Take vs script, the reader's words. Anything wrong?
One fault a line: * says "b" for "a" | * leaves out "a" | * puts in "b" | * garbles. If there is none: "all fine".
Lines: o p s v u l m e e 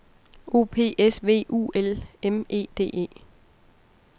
* puts in "d"